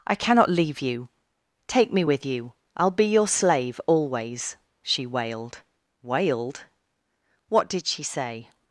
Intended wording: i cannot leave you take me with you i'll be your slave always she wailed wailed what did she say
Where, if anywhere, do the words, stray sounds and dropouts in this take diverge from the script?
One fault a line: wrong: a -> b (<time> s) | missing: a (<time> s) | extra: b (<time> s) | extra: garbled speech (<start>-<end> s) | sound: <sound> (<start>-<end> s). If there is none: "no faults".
no faults